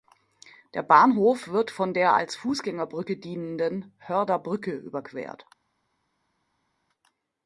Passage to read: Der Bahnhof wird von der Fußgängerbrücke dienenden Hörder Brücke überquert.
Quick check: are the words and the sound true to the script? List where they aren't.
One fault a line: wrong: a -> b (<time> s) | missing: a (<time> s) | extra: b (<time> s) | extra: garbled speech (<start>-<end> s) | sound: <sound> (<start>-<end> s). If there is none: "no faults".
extra: als (2.1 s)